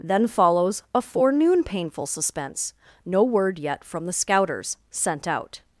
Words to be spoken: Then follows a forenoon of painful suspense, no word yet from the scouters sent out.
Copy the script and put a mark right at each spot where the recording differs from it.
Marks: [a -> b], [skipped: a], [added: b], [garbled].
Then follows a forenoon [skipped: of] painful suspense, no word yet from the scouters sent out.